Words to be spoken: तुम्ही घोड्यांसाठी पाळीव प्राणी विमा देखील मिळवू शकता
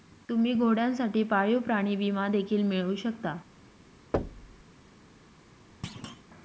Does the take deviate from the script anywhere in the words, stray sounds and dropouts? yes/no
yes